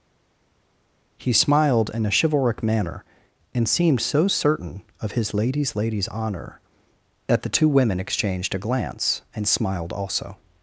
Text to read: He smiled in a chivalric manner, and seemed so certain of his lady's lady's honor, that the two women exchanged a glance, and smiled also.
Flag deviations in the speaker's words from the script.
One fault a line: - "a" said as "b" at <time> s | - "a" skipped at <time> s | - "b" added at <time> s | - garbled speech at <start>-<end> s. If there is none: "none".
none